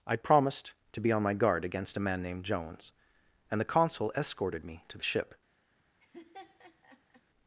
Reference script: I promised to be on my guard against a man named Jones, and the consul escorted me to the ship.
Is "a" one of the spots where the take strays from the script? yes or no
no